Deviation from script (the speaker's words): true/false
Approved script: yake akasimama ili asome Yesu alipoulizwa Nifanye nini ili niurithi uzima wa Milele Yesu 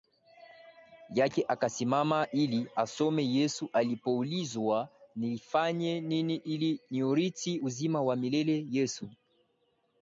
false